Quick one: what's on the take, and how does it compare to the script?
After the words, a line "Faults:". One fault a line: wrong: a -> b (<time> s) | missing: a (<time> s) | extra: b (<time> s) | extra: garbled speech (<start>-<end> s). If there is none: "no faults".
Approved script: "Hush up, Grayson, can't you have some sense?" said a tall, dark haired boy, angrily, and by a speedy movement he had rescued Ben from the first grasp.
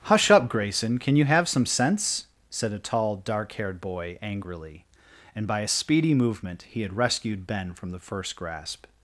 "Hush up, Grayson, can you have some sense?" said a tall, dark haired boy, angrily, and by a speedy movement he had rescued Ben from the first grasp.
Faults:
wrong: can't -> can (1.0 s)